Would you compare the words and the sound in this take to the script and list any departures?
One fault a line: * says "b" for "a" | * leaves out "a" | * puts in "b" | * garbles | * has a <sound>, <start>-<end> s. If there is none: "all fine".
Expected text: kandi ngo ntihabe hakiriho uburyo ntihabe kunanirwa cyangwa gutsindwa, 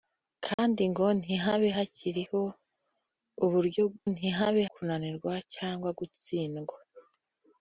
* has a dropout, 0.5-0.6 s